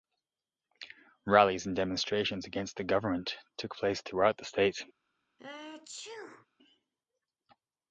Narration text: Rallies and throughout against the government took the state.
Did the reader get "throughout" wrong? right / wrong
wrong